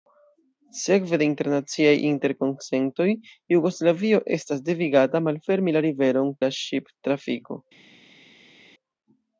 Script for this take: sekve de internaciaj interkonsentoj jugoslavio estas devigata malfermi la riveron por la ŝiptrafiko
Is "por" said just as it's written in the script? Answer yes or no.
no